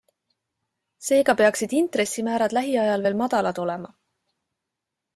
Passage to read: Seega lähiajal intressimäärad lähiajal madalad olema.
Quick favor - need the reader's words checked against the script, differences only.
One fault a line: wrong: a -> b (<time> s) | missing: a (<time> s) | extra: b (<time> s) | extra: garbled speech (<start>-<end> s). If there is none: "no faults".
wrong: lähiajal -> peaksid (1.4 s)
extra: veel (3.1 s)